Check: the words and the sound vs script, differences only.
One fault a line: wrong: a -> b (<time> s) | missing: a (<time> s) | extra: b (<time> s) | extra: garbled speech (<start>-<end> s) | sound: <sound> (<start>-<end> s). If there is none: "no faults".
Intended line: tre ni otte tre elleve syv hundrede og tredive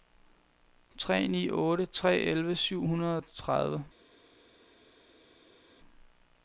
no faults